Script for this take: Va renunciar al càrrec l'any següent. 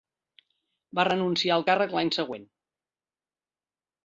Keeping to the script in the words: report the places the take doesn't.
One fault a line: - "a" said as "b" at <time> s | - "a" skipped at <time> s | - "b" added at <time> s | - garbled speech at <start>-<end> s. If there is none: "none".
none